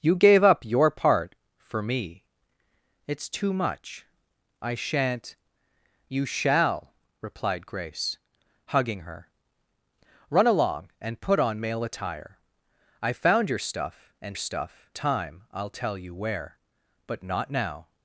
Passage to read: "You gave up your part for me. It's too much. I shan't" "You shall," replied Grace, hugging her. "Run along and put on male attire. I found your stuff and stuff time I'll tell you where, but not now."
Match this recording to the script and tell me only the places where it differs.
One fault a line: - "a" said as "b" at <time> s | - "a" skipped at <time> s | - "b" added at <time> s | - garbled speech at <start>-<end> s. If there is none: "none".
none